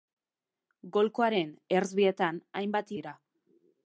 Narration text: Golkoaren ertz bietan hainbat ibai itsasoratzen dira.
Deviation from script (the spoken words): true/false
true